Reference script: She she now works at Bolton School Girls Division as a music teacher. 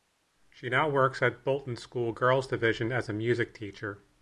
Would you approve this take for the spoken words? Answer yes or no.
no